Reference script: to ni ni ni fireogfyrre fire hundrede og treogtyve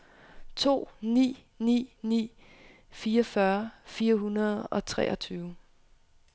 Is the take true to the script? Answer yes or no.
yes